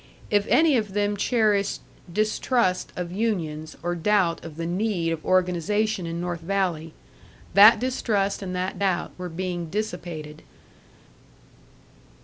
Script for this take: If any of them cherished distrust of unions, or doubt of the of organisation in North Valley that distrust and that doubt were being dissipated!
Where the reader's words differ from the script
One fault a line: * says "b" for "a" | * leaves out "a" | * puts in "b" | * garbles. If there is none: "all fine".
* puts in "need"